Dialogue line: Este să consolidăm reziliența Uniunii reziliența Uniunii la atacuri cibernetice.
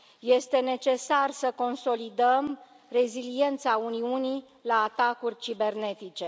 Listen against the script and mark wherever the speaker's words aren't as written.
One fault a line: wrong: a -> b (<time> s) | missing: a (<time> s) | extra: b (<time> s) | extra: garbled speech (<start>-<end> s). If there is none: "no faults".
extra: necesar (0.6 s)
missing: reziliența Uniunii (4.5 s)